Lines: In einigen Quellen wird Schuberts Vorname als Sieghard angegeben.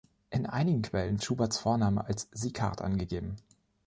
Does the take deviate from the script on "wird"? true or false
true